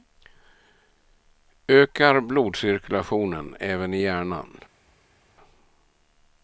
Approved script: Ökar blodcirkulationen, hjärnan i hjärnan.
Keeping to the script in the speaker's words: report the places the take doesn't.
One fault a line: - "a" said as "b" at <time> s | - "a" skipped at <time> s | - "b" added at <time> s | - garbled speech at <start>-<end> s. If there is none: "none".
- "hjärnan" said as "även" at 3.6 s